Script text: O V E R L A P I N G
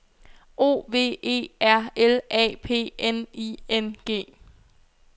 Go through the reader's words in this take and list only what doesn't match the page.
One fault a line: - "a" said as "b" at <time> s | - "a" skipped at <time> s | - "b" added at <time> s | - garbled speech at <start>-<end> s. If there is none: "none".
- "N" added at 3.0 s